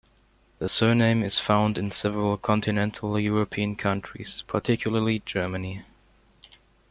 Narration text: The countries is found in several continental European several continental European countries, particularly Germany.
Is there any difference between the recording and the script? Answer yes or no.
yes